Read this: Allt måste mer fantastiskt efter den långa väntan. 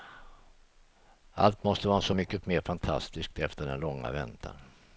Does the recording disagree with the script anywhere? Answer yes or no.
yes